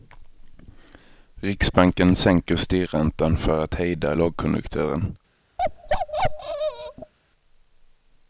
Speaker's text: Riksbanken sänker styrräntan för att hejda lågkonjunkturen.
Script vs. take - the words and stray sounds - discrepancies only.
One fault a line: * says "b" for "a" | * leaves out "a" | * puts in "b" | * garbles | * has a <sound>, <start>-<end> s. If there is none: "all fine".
* has a bark, 5.6-7.1 s